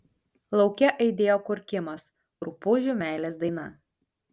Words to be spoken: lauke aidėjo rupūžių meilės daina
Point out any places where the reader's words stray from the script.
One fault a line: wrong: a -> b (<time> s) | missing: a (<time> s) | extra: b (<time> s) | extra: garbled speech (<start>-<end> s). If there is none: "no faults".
extra: kurkimas (1.5 s)